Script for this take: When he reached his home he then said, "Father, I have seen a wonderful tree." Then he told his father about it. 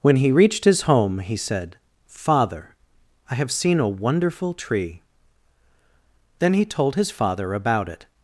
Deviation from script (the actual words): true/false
true